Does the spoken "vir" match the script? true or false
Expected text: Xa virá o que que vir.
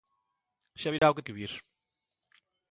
true